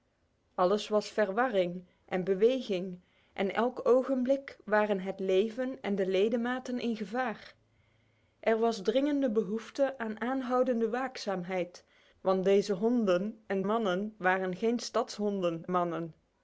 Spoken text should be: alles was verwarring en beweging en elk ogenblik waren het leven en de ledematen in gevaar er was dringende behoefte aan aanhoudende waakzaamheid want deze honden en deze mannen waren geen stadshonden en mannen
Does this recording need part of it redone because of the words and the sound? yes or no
yes